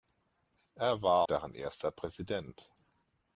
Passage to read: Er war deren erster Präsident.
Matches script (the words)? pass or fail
pass